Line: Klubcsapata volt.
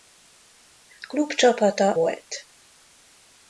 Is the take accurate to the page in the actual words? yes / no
yes